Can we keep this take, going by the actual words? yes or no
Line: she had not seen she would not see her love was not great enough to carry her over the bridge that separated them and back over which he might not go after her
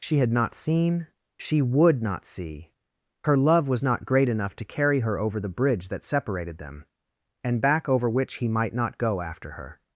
yes